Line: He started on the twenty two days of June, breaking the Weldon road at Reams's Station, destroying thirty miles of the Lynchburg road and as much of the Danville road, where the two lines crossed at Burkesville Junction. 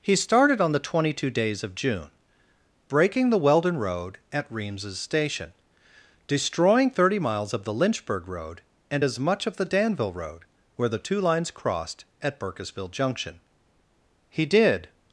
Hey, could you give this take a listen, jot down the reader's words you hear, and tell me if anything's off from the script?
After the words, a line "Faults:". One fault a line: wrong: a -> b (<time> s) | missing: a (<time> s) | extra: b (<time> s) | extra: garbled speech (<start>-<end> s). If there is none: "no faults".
He started on the twenty two days of June, breaking the Weldon road at Reams's Station, destroying thirty miles of the Lynchburg road and as much of the Danville road, where the two lines crossed at Burkesville Junction. He did
Faults:
extra: He did (14.3 s)